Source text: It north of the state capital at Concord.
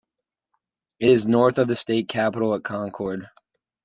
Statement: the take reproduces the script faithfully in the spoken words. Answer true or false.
false